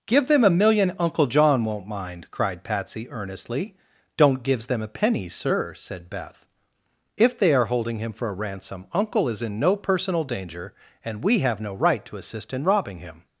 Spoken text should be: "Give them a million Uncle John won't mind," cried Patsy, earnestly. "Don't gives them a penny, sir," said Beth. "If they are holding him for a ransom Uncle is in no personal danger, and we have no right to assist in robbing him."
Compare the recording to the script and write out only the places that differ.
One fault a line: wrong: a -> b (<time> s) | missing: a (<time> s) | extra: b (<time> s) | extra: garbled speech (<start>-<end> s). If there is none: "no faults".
no faults